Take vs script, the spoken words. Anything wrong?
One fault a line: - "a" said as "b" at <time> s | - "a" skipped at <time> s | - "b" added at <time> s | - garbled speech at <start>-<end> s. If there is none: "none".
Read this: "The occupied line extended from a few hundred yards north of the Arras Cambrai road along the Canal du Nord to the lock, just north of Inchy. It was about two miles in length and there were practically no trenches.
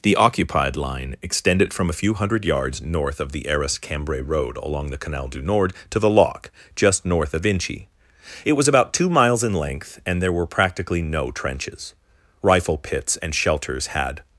- "Rifle pits and shelters had" added at 12.4 s